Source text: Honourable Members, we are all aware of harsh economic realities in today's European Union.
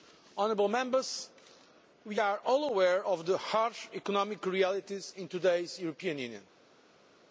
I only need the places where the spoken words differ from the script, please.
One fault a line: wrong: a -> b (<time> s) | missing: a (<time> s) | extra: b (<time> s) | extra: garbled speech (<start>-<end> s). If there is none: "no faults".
extra: the (3.2 s)